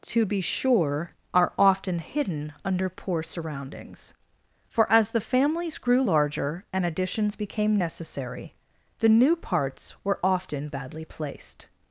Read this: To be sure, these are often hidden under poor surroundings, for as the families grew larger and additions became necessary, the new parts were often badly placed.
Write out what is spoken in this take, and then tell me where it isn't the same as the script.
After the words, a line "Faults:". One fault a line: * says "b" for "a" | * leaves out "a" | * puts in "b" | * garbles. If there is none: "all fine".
To be sure, are often hidden under poor surroundings, for as the families grew larger and additions became necessary, the new parts were often badly placed.
Faults:
* leaves out "these"